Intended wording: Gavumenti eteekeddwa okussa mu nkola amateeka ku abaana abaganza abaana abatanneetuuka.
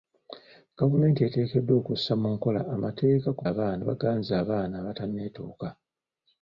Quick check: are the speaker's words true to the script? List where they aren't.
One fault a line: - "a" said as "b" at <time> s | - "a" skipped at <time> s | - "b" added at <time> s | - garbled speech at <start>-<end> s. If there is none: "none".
none